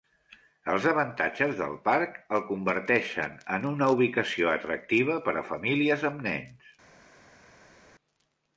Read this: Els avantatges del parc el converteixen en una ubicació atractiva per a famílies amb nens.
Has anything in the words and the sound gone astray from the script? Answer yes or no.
no